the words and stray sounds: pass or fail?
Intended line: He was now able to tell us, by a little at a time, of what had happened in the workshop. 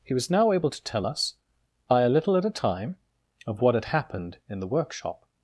pass